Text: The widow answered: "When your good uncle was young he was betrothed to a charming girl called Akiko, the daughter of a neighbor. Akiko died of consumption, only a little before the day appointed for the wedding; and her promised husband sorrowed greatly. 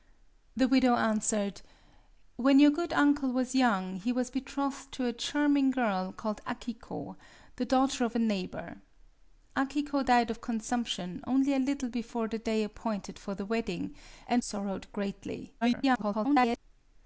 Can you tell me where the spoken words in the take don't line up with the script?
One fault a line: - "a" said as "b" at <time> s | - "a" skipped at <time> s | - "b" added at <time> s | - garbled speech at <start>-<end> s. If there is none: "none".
- "her promised husband" skipped at 14.4 s
- garbled speech at 15.6-16.6 s